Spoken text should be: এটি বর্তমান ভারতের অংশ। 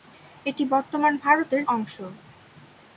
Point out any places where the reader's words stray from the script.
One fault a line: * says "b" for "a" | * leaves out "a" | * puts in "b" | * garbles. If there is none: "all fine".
all fine